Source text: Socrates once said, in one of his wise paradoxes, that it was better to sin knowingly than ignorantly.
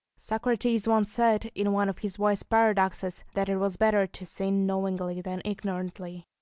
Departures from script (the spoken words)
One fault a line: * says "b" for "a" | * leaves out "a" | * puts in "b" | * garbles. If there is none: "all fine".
all fine